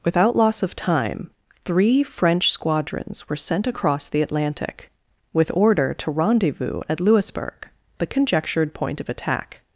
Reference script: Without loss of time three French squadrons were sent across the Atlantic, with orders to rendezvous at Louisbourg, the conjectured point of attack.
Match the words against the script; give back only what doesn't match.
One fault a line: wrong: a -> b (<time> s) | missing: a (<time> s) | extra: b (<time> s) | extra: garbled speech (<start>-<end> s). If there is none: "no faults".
wrong: orders -> order (5.5 s)